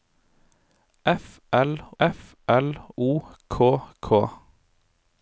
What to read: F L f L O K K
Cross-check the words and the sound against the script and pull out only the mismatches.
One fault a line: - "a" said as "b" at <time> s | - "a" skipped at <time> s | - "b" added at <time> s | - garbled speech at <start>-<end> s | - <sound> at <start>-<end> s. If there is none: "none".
none